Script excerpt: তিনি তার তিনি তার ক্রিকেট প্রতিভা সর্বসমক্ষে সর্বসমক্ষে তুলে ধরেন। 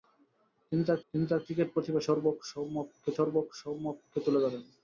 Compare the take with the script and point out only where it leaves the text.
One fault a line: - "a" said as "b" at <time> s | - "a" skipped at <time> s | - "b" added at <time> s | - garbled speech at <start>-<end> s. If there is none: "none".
none